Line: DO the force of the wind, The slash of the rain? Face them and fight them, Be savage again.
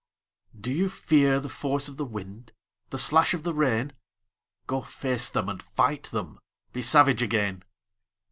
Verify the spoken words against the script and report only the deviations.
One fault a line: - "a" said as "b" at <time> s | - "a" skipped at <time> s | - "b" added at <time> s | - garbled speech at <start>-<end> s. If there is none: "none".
- "you fear" added at 0.7 s
- "Go" added at 4.7 s